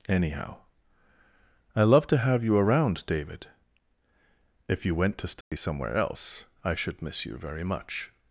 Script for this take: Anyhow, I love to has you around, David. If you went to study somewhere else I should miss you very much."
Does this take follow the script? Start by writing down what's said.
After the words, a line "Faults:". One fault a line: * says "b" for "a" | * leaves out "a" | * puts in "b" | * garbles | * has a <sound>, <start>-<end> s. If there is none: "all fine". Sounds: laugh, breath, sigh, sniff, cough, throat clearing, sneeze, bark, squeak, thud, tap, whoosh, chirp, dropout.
Anyhow, I love to have you around, David. If you went to study somewhere else I should miss you very much."
Faults:
* says "have" for "has"
* has a dropout, 5.4-5.5 s